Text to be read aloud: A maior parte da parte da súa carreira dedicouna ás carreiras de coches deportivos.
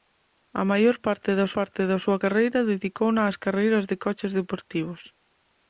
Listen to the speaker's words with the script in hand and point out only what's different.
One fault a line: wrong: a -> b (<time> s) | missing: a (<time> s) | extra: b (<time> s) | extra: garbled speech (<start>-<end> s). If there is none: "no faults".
no faults